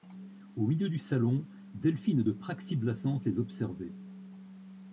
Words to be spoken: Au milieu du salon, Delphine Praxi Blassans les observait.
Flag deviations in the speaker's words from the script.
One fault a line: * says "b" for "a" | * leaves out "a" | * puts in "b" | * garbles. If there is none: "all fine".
* puts in "de"